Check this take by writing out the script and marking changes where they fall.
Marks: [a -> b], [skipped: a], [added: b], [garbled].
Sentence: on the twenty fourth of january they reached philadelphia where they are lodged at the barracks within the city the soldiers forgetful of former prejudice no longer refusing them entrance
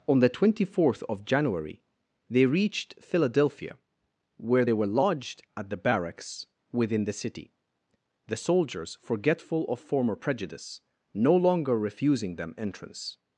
on the twenty fourth of january they reached philadelphia where they [are -> were] lodged at the barracks within the city the soldiers forgetful of former prejudice no longer refusing them entrance